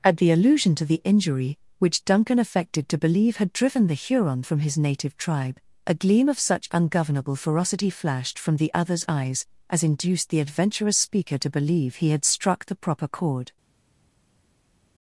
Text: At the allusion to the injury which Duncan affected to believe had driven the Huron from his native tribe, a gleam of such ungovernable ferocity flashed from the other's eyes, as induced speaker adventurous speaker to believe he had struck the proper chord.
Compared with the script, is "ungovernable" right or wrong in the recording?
right